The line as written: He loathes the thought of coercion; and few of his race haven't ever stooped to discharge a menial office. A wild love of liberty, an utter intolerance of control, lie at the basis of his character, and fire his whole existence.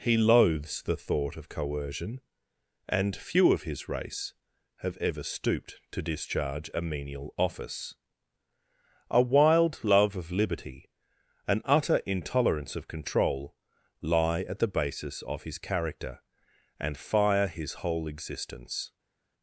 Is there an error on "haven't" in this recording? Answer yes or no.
yes